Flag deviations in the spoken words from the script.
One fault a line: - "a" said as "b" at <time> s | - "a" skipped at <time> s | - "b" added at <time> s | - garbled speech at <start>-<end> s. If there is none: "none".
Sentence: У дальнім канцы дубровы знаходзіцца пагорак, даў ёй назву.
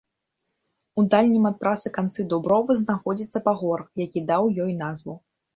- "ад трасы" added at 1.5 s
- "які" added at 4.1 s